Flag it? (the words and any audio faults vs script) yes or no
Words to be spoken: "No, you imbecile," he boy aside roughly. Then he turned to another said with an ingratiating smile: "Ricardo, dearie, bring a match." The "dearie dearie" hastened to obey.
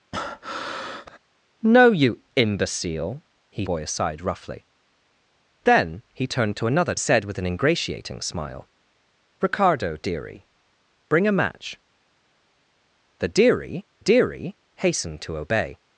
yes